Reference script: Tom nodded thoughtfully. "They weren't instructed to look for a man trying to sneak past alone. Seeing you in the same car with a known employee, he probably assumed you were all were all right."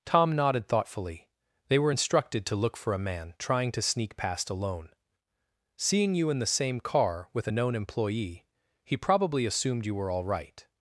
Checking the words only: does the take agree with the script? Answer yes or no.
no